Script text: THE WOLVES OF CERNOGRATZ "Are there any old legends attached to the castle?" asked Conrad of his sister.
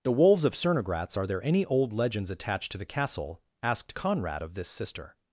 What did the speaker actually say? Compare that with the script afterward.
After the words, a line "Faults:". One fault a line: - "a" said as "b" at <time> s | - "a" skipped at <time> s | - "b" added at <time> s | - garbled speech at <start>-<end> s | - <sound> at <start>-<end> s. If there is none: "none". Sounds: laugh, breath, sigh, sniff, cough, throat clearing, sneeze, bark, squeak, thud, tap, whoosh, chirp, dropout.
THE WOLVES OF CERNOGRATZ "Are there any old legends attached to the castle?" asked Conrad of this sister.
Faults:
- "his" said as "this" at 4.5 s